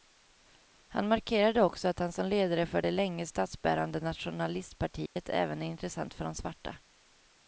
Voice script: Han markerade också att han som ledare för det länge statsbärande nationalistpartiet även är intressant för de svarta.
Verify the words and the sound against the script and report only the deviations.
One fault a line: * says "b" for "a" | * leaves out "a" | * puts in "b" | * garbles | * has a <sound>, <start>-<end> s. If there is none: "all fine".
* has a dropout, 5.1-5.2 s